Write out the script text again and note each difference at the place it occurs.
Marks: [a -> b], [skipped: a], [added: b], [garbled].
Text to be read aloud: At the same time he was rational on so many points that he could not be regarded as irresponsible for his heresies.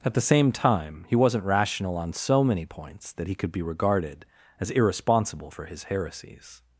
At the same time he [was -> wasn't] rational on so many points that he could [skipped: not] be regarded as irresponsible for his heresies.